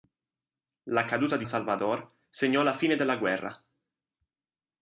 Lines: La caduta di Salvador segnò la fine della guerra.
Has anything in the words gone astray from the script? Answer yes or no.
no